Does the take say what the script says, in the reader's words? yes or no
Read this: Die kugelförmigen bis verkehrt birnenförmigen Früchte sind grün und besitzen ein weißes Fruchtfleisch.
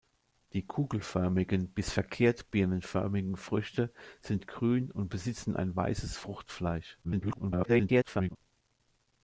no